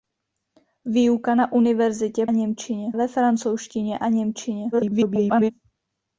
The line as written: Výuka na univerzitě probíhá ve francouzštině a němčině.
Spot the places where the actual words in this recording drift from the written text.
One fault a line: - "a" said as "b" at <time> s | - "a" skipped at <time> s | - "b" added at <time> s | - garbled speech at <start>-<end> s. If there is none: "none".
- "probíhá" said as "němčině" at 2.3 s
- garbled speech at 4.7-5.5 s